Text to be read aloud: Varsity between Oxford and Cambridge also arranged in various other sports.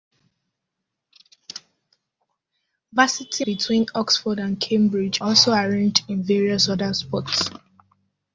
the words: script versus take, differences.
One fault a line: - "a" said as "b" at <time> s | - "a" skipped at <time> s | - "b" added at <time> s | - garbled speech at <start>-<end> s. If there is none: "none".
none